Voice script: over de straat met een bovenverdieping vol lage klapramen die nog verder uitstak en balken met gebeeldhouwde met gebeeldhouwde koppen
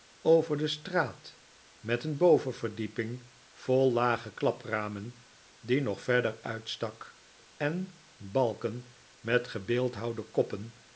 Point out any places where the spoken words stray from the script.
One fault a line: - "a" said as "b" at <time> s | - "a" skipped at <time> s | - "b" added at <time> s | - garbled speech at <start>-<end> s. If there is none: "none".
- "met gebeeldhouwde" skipped at 10.2 s